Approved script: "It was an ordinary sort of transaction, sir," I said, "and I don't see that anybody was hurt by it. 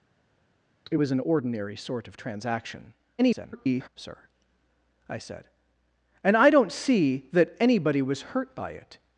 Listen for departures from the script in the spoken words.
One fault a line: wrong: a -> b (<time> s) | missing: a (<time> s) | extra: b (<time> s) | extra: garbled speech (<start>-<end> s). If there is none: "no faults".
extra: garbled speech (3.2-3.9 s)